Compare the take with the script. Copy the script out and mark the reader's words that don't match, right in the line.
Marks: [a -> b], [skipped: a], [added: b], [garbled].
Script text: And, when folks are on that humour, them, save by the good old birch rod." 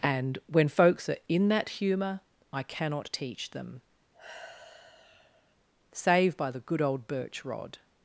And, when folks are [on -> in] that humour, [added: I cannot teach] them, save by the good old birch rod."